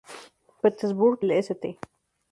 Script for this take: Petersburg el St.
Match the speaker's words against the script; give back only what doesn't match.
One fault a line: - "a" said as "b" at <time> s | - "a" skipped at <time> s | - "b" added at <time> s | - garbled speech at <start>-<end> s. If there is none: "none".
none